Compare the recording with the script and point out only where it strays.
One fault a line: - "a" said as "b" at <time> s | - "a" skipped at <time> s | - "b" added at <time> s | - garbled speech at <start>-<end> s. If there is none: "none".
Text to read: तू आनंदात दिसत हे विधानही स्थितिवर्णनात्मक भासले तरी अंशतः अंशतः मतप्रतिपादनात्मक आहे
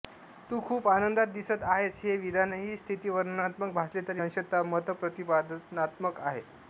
- "खूप" added at 0.6 s
- "आहेस" added at 1.6 s
- "अंशतः" skipped at 4.6 s